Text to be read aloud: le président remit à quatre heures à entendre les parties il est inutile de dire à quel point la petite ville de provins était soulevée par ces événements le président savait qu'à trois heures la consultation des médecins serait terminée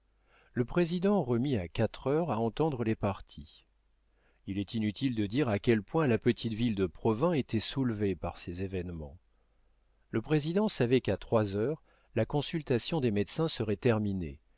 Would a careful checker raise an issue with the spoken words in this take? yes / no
no